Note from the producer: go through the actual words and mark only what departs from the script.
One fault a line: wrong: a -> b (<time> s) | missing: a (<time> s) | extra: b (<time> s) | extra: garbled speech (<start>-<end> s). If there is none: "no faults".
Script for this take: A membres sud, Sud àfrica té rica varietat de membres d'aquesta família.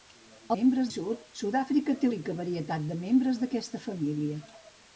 no faults